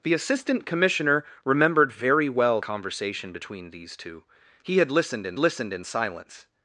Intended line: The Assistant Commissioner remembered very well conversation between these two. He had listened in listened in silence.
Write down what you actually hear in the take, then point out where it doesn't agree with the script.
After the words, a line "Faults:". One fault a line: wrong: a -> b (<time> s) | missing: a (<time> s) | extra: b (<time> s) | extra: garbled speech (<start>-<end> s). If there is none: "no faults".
The Assistant Commissioner remembered very well conversation between these two. He had listened in listened in silence.
Faults:
no faults